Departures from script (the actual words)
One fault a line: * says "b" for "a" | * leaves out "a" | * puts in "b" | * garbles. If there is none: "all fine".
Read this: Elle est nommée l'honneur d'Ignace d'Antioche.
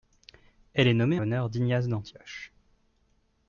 all fine